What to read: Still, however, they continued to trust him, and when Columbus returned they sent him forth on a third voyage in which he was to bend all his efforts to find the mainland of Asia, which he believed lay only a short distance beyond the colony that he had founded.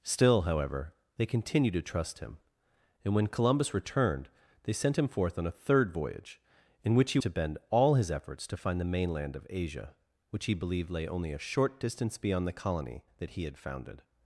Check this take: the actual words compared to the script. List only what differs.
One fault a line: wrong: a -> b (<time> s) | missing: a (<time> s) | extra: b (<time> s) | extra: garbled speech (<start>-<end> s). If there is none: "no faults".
missing: was (7.2 s)